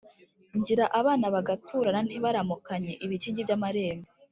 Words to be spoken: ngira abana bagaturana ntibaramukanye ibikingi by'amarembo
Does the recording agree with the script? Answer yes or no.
yes